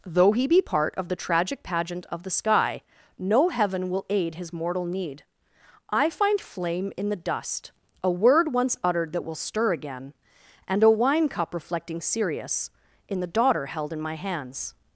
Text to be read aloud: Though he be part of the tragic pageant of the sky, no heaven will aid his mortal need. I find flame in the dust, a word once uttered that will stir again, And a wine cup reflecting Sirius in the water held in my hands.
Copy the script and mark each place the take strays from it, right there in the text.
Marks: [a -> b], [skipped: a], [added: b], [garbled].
Though he be part of the tragic pageant of the sky, no heaven will aid his mortal need. I find flame in the dust, a word once uttered that will stir again, And a wine cup reflecting Sirius in the [water -> daughter] held in my hands.